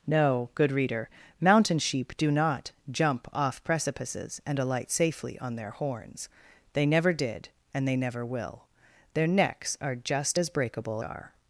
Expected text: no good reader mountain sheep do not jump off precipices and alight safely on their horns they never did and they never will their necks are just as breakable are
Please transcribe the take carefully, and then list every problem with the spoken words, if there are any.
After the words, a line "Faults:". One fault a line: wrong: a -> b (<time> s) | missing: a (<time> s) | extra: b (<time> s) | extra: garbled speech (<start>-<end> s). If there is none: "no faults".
no good reader mountain sheep do not jump off precipices and alight safely on their horns they never did and they never will their necks are just as breakable are
Faults:
no faults